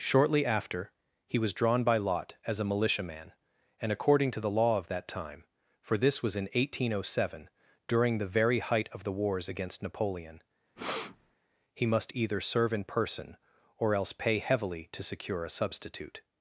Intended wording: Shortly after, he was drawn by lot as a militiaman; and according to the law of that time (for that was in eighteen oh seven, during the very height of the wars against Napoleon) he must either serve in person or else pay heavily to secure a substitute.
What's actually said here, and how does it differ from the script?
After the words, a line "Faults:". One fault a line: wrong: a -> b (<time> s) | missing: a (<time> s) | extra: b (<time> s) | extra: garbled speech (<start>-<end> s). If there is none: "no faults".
Shortly after, he was drawn by lot as a militiaman; and according to the law of that time (for this was in eighteen oh seven, during the very height of the wars against Napoleon) he must either serve in person or else pay heavily to secure a substitute.
Faults:
wrong: that -> this (6.0 s)